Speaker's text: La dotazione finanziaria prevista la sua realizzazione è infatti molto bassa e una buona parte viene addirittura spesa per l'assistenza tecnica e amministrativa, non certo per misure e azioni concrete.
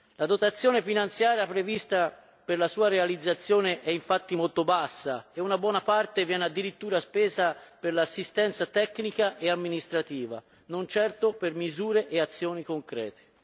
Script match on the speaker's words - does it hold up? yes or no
no